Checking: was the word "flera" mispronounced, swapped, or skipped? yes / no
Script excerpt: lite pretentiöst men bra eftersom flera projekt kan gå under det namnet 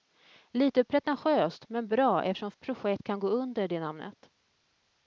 yes